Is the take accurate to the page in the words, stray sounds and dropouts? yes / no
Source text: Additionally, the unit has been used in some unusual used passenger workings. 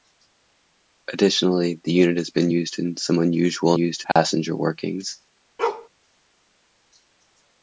no